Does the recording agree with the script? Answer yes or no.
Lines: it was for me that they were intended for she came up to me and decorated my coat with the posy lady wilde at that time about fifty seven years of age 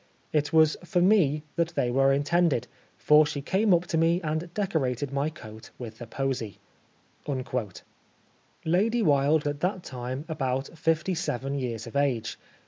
yes